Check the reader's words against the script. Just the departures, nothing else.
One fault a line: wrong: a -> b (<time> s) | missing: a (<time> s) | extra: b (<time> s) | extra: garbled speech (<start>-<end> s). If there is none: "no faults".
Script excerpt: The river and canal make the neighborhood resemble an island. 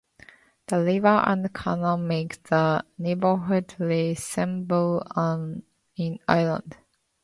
no faults